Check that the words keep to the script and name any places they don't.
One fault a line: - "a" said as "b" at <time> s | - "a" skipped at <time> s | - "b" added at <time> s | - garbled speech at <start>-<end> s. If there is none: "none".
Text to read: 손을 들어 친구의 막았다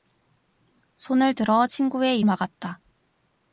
none